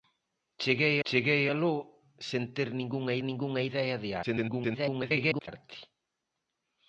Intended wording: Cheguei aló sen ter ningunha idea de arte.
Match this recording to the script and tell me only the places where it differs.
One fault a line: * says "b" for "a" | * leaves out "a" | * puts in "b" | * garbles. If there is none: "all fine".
* puts in "cheguei"
* puts in "ningunha"
* garbles